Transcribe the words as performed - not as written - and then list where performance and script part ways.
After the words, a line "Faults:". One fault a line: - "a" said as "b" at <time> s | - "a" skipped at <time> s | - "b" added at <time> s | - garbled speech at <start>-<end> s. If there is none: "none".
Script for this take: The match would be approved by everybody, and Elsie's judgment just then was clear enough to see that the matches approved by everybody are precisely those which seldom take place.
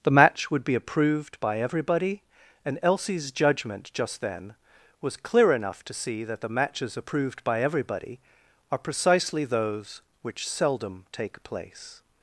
The match would be approved by everybody, and Elsie's judgment just then was clear enough to see that the matches approved by everybody are precisely those which seldom take place.
Faults:
none